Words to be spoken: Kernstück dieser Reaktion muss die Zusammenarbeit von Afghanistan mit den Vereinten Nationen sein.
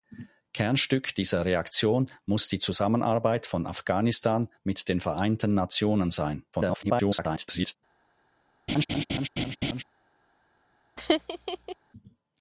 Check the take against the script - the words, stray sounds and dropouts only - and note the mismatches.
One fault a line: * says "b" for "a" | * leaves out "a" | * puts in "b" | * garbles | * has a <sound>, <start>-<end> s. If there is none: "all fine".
* garbles
* has a laugh, 8.7-9.8 s
* has a laugh, 11.0-11.8 s